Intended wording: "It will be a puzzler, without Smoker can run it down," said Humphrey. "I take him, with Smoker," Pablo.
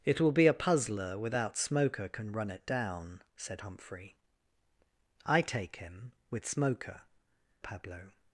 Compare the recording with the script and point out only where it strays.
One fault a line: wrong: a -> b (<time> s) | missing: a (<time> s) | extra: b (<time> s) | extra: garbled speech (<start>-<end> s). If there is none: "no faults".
no faults